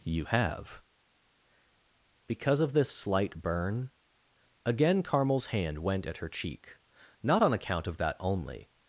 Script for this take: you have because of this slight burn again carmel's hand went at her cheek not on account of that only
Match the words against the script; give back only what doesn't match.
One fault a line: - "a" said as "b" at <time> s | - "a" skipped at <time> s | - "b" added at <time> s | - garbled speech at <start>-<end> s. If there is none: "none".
none